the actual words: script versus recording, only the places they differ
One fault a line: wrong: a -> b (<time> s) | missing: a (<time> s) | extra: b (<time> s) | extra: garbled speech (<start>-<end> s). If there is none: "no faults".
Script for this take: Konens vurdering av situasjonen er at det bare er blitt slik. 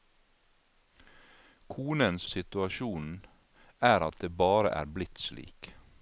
missing: vurdering av (2.3 s)